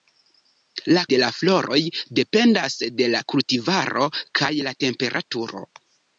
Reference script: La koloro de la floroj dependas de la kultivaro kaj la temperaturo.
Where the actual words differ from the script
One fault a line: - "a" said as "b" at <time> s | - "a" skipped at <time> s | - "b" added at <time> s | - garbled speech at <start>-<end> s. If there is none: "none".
- "koloro" skipped at 1.0 s